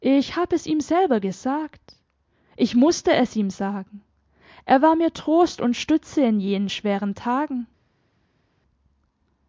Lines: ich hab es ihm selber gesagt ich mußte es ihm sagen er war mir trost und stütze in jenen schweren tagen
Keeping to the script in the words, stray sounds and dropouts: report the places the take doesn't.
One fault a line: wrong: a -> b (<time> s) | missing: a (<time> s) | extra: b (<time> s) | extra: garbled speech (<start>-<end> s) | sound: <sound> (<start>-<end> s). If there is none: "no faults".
no faults